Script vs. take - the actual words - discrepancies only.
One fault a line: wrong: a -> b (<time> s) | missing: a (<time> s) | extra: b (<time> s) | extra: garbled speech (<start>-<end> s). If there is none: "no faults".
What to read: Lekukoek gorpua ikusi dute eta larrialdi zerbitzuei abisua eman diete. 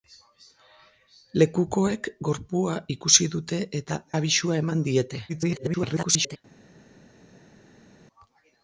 missing: larrialdi zerbitzuei (4.0 s)
extra: garbled speech (5.3-6.4 s)